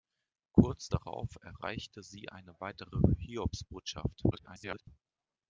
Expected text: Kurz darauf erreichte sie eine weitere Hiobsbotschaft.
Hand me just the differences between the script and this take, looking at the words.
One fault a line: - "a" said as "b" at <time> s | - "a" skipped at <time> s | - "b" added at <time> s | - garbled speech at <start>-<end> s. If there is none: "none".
- garbled speech at 4.3-4.9 s